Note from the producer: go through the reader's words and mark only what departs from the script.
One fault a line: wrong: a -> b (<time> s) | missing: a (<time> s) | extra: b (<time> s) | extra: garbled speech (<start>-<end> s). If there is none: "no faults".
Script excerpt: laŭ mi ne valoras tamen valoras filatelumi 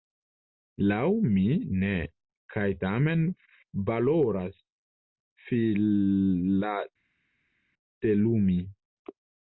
wrong: valoras -> kaj (2.5 s)